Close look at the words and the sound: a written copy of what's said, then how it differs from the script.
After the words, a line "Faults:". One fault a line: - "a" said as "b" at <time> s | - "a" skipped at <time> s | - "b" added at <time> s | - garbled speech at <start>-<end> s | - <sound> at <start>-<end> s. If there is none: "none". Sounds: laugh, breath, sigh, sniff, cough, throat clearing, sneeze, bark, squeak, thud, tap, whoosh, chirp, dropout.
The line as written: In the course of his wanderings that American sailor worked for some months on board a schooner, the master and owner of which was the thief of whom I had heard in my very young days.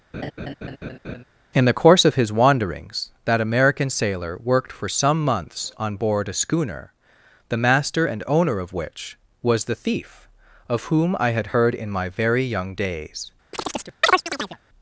In the course of his wanderings that American sailor worked for some months on board a schooner, the master and owner of which was the thief of whom I had heard in my very young days.
Faults:
- laugh at 0.1-1.2 s
- chirp at 13.5-14.6 s